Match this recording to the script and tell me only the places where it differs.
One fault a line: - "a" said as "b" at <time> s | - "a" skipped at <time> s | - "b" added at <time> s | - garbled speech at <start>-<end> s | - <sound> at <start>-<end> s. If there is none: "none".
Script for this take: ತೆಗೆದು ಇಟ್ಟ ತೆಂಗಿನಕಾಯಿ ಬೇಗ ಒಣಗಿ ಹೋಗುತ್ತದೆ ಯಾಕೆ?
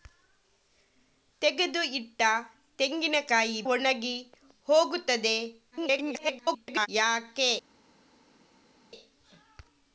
- "ಬೇಗ" skipped at 3.6 s
- garbled speech at 5.7-6.9 s